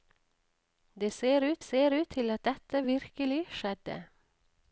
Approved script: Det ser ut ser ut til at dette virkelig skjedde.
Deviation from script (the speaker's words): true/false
false